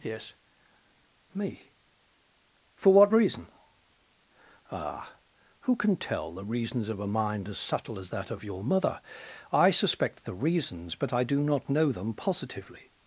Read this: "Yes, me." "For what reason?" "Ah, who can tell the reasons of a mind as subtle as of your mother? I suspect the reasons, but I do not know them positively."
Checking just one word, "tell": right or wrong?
right